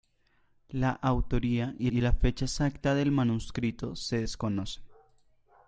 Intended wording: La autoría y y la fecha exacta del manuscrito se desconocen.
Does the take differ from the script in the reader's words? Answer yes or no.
no